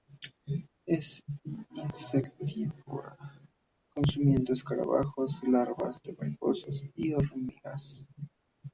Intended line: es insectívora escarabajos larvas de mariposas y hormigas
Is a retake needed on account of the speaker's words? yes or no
yes